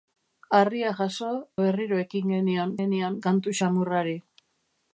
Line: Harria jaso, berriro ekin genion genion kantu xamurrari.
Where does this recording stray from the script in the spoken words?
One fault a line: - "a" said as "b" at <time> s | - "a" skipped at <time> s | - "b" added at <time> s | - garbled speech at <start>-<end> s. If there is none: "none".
none